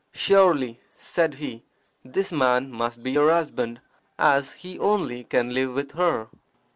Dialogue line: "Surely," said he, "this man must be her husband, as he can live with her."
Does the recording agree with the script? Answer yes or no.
no